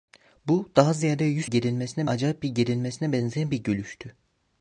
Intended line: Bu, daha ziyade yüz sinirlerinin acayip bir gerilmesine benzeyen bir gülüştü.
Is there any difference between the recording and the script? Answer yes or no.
yes